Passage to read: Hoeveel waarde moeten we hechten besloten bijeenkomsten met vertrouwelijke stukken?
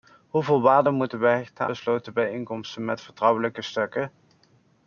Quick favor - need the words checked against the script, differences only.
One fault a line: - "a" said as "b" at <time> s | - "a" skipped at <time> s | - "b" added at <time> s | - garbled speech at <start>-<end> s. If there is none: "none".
none